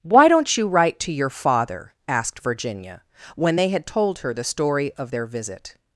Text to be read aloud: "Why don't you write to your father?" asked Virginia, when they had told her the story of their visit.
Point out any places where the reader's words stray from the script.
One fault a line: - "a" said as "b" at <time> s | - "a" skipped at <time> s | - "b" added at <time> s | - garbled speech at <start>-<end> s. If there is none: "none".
none